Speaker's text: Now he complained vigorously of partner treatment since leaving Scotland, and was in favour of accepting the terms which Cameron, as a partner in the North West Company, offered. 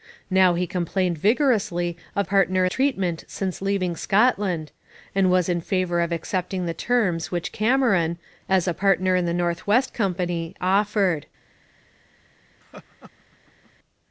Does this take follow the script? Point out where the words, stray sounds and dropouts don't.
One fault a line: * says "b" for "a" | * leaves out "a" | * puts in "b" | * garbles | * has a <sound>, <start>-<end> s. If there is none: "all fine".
* has a laugh, 12.6-13.7 s